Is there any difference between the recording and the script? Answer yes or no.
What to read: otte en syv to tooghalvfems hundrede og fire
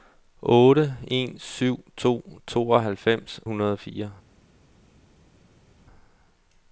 no